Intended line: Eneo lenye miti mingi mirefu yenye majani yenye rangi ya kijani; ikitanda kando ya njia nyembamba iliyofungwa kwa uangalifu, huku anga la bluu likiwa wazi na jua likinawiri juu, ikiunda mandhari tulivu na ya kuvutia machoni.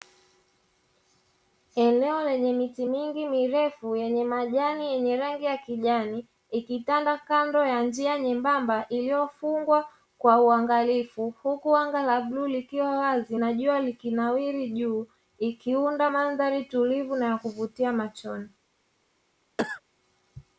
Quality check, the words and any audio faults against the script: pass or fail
fail